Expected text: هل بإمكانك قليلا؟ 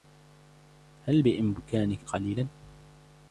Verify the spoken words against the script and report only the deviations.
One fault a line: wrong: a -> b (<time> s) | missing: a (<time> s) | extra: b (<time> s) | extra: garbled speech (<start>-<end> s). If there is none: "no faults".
no faults